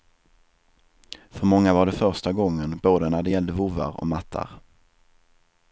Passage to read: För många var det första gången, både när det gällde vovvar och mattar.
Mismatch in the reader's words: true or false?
false